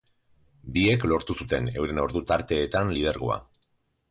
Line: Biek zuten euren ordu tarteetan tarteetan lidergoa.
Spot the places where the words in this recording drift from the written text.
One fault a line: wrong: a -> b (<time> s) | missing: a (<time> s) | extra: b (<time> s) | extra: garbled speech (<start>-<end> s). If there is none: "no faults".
extra: lortu (1.1 s)
missing: tarteetan (3.0 s)